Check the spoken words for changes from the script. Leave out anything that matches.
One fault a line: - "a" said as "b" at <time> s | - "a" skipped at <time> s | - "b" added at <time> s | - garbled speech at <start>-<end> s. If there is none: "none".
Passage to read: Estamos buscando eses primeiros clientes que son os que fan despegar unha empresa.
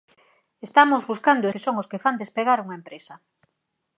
- "eses primeiros clientes" skipped at 1.4 s